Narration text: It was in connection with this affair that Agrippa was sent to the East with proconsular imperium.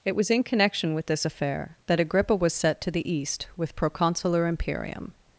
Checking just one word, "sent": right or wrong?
wrong